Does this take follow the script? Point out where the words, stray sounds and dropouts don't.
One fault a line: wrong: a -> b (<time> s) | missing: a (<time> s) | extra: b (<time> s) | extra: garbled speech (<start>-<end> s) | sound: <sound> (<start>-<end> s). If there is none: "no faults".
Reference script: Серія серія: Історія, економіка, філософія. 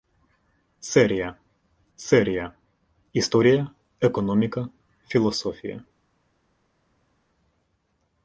no faults